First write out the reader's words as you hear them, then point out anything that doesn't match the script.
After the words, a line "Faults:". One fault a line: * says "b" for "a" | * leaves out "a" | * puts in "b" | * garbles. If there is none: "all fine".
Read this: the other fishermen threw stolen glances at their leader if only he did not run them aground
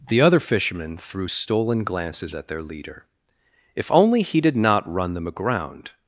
the other fishermen threw stolen glances at their leader if only he did not run them aground
Faults:
all fine